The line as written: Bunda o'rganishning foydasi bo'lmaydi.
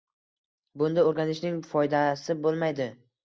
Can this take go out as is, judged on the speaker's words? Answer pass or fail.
pass